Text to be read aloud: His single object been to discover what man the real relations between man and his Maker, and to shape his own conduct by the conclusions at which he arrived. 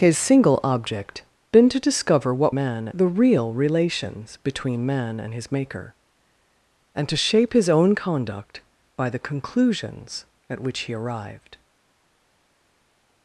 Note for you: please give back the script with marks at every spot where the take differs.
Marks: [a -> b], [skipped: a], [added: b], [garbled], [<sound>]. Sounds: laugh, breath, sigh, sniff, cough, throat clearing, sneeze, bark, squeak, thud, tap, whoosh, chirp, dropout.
His single object been to discover what man the real relations between man and his Maker, and to shape his own conduct by the conclusions at which he arrived.